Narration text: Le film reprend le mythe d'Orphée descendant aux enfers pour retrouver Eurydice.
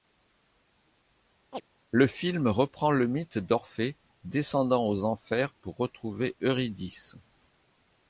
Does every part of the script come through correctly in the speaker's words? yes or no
yes